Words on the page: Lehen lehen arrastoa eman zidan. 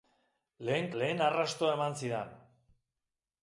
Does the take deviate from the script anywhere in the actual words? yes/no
no